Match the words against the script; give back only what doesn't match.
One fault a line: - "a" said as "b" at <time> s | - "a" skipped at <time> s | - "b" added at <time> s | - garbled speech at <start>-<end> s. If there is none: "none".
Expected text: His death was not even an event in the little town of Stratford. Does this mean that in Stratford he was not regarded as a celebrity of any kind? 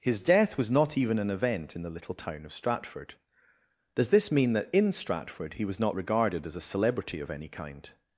none